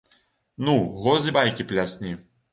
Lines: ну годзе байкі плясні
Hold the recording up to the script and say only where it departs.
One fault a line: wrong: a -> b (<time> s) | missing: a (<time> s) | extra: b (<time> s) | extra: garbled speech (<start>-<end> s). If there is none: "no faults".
no faults